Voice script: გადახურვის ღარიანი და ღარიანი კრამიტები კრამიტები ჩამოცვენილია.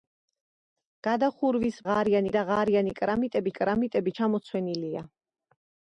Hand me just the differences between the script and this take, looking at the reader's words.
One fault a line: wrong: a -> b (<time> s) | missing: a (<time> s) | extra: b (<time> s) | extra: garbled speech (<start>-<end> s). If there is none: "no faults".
no faults